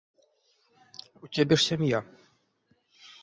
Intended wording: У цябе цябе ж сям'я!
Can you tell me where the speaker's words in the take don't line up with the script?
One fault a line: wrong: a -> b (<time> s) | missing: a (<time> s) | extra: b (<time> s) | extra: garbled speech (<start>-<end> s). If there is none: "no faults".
missing: цябе (1.6 s)